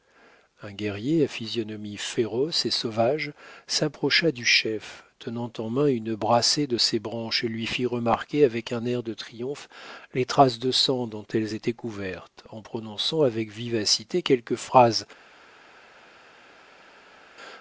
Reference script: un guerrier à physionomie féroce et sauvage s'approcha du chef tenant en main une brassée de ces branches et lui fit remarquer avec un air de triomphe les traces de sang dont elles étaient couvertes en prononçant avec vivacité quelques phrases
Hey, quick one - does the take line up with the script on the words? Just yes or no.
yes